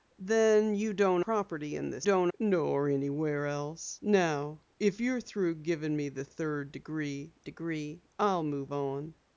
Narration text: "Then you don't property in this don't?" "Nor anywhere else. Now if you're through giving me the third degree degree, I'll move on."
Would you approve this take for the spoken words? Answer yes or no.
yes